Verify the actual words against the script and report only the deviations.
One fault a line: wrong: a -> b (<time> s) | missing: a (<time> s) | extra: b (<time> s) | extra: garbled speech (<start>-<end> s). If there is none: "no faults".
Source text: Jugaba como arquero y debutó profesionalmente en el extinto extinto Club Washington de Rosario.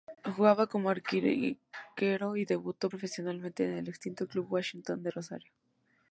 missing: extinto (4.3 s)